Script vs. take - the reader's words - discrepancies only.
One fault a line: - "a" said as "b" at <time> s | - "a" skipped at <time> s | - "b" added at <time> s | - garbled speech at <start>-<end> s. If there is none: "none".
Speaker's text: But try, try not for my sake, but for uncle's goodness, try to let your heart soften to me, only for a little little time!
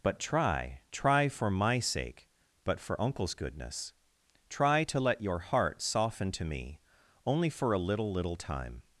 - "not" skipped at 1.3 s